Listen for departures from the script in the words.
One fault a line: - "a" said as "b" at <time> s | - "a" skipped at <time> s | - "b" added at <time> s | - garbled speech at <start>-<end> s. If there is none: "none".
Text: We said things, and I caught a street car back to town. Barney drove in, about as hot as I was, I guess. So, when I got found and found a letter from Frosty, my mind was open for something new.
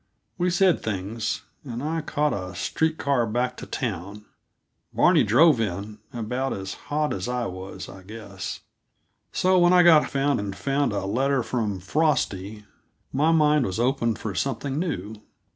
none